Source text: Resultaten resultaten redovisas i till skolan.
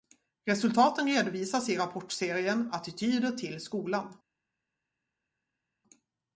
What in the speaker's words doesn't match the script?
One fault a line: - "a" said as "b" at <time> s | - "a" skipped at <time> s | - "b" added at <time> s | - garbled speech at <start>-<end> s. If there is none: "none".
- "resultaten" skipped at 1.1 s
- "rapportserien Attityder" added at 1.8 s